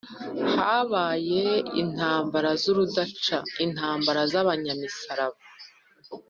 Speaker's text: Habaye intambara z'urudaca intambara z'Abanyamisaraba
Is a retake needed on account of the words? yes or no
no